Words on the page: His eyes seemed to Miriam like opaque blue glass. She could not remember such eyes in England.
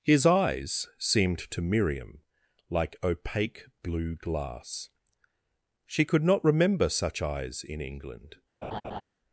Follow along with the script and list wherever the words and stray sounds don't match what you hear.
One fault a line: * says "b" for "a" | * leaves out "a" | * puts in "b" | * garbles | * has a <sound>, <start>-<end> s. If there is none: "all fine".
* has a laugh, 8.6-9.0 s